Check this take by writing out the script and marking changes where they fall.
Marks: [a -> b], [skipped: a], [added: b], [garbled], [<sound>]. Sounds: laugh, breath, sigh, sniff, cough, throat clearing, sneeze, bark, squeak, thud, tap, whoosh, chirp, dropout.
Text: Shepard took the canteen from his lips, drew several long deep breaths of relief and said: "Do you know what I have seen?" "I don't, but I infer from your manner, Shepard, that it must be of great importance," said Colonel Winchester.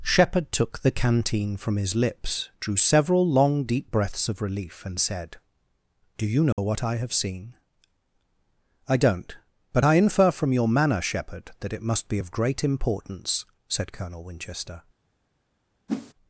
Shepard took the canteen from his lips, drew several long deep breaths of relief and said: "Do you know [dropout] what I have seen?" "I don't, but I infer from your manner, Shepard, that it must be of great importance," said Colonel Winchester. [whoosh]